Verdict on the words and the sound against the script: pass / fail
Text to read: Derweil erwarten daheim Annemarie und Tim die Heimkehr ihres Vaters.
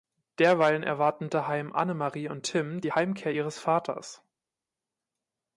pass